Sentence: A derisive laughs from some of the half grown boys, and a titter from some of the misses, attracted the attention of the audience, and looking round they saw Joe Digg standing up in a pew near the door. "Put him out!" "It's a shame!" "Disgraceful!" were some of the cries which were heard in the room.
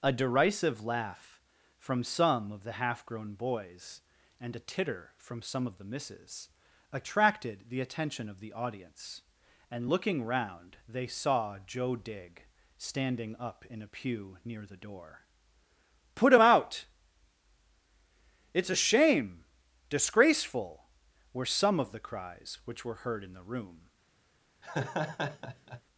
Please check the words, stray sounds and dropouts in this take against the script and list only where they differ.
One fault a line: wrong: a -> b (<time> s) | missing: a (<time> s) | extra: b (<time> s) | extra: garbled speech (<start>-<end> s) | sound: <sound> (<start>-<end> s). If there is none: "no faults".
wrong: laughs -> laugh (0.8 s)
sound: laugh (24.6-25.8 s)